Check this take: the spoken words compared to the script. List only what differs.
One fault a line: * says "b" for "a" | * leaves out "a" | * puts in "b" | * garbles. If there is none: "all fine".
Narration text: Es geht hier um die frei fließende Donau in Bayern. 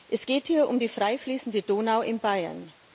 all fine